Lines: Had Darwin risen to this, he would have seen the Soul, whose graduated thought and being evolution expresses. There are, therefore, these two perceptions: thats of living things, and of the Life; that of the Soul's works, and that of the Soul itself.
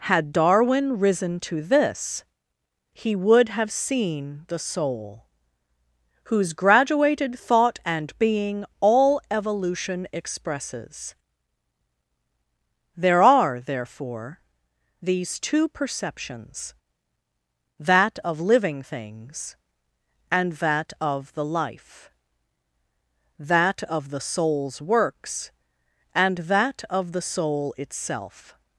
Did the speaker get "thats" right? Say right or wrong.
wrong